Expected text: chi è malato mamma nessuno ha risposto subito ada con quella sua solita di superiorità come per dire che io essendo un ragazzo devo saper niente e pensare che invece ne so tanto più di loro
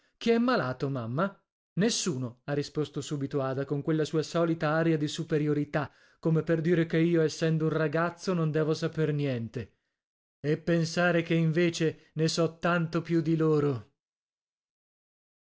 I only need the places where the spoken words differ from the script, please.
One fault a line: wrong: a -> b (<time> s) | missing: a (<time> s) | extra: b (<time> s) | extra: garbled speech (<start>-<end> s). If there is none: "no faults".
extra: aria (4.7 s)
extra: non (8.3 s)